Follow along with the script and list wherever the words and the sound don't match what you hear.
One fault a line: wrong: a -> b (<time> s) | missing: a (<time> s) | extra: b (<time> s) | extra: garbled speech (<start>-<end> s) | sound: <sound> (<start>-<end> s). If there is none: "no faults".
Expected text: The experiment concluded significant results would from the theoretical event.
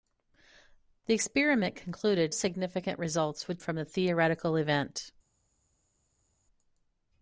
no faults